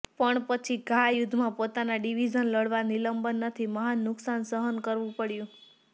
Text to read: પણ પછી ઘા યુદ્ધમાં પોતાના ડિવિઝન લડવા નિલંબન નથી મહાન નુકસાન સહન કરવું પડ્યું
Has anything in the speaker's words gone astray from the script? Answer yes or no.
no